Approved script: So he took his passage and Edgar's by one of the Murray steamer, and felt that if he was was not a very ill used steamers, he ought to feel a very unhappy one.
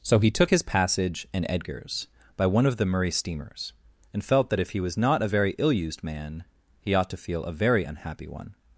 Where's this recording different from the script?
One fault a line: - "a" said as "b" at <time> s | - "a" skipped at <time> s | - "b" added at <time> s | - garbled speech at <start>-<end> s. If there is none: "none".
- "steamer" said as "steamers" at 3.1 s
- "was" skipped at 5.0 s
- "steamers" said as "man" at 6.0 s